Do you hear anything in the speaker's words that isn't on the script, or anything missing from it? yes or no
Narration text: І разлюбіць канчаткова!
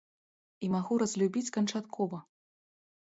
yes